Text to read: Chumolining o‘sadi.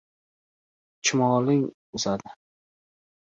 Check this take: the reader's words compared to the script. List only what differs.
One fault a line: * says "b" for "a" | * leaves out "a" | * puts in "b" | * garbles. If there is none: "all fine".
all fine